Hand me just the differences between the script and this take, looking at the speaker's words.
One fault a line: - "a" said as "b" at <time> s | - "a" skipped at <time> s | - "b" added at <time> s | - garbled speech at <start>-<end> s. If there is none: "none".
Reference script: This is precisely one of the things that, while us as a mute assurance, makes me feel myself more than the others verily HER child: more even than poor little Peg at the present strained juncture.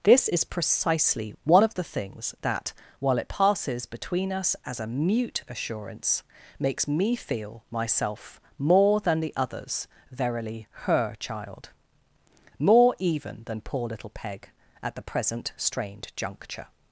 - "it passes between" added at 3.2 s